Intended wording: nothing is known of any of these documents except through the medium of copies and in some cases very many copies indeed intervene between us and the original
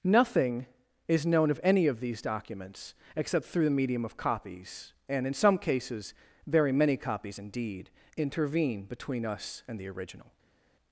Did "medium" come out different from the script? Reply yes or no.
no